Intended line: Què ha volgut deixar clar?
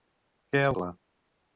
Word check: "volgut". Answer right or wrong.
wrong